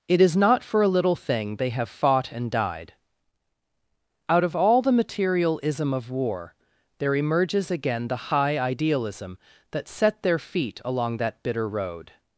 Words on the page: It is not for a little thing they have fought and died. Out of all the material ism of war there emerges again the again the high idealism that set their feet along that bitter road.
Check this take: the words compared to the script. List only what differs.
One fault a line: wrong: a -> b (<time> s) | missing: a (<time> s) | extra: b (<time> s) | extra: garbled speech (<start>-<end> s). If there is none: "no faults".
missing: again the (8.3 s)